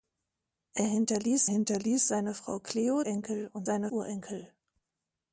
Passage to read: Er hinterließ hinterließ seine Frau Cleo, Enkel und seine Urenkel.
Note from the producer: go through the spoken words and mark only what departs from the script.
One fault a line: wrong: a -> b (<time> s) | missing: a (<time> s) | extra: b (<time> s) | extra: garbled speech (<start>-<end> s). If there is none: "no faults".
no faults